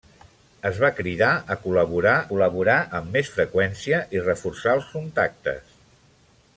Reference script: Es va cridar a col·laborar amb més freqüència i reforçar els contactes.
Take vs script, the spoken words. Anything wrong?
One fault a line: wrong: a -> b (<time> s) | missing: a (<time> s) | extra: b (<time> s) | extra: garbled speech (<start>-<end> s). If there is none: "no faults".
extra: col·laborar (2.3 s)